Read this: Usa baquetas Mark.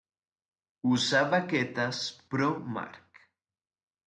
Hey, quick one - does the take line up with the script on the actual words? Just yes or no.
no